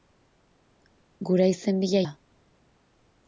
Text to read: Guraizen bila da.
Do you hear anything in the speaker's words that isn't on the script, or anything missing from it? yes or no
no